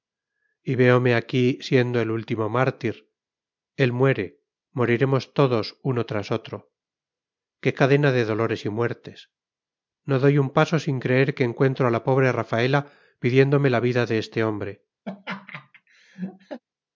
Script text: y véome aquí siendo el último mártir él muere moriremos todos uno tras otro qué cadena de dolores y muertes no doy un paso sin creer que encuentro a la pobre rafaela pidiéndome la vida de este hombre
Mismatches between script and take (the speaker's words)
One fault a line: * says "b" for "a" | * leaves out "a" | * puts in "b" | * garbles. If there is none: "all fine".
all fine